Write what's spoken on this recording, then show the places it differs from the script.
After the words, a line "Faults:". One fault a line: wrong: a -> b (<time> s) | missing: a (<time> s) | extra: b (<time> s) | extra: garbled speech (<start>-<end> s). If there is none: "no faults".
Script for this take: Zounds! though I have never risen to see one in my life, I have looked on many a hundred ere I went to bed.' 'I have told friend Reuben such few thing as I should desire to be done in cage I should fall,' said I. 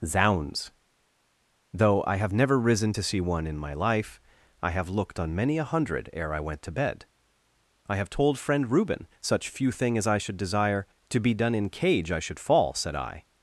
Zounds! though I have never risen to see one in my life, I have looked on many a hundred ere I went to bed.' 'I have told friend Reuben such few thing as I should desire to be done in cage I should fall,' said I.
Faults:
no faults